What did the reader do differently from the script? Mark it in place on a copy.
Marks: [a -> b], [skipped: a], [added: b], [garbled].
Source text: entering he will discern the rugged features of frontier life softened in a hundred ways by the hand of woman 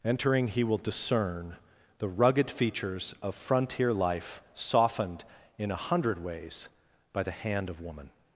entering he will discern the rugged features of frontier life softened in a hundred ways by the hand of woman